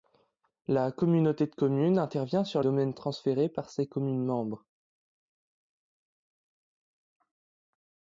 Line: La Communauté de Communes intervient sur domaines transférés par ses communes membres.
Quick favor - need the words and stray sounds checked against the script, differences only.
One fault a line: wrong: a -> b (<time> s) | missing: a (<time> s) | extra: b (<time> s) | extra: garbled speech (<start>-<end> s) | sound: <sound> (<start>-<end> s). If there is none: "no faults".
no faults